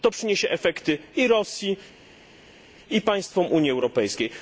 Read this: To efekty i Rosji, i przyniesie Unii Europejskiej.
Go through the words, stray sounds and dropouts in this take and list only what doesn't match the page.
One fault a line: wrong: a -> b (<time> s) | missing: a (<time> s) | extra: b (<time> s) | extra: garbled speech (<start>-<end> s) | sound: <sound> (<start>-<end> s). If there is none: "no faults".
extra: przyniesie (0.1 s)
wrong: przyniesie -> państwom (3.0 s)